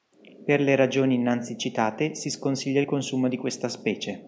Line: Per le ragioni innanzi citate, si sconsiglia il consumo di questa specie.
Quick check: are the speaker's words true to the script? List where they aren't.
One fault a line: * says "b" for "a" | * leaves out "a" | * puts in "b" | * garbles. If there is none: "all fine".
all fine